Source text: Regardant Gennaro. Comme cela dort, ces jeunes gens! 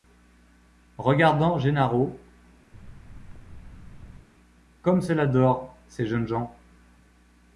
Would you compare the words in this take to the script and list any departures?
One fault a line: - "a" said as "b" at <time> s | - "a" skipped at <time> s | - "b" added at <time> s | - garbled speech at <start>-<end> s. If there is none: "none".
none